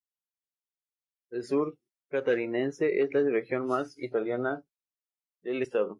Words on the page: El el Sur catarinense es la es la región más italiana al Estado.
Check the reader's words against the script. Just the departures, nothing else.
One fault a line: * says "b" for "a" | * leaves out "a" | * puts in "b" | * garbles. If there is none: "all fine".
* leaves out "el"
* leaves out "es la"
* says "del" for "al"